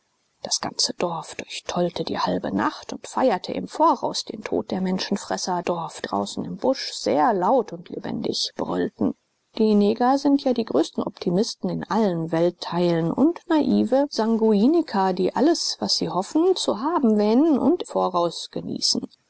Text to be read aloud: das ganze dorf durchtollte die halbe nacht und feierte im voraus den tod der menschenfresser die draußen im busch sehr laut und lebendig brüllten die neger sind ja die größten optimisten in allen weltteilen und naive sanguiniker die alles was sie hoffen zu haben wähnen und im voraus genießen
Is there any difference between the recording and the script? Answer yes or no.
yes